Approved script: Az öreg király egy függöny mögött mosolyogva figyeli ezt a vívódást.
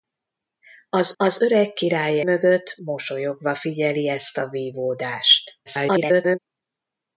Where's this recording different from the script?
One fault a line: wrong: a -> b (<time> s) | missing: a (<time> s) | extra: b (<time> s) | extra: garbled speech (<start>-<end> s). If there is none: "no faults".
extra: az (1.2 s)
missing: egy függöny (2.2 s)
extra: garbled speech (5.7-6.4 s)